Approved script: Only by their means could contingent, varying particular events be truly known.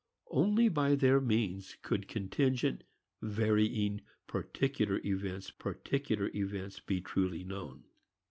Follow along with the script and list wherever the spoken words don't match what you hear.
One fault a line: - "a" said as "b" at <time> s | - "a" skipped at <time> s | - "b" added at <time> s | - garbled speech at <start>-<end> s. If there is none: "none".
- "particular events" added at 5.6 s